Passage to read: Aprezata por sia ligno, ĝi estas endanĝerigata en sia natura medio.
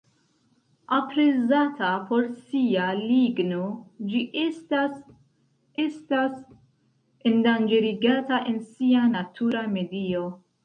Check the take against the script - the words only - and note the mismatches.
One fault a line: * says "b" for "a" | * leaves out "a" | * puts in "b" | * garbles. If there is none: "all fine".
* puts in "estas"